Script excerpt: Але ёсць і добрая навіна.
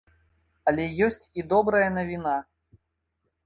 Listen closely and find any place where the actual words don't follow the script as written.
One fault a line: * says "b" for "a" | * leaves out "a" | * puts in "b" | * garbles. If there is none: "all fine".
all fine